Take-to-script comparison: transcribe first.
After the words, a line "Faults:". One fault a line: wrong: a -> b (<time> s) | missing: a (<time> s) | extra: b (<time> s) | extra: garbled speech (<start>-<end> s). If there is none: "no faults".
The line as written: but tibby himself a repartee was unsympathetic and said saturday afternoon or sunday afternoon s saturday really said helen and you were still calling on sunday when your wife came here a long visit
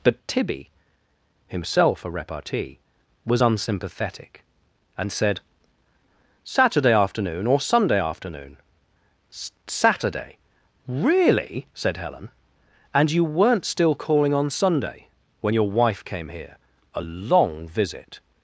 but tibby himself a repartee was unsympathetic and said saturday afternoon or sunday afternoon s saturday really said helen and you weren't still calling on sunday when your wife came here a long visit
Faults:
wrong: were -> weren't (13.2 s)